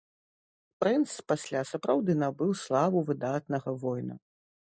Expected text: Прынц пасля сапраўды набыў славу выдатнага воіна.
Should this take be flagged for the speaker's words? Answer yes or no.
no